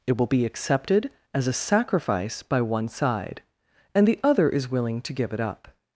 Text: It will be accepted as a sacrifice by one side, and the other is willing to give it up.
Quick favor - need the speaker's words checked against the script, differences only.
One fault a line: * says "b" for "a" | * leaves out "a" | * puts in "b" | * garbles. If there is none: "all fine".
all fine